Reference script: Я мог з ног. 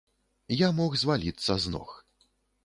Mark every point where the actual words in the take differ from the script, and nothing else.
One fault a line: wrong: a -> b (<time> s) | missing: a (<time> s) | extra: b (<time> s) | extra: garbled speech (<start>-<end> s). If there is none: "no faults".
extra: зваліцца (1.0 s)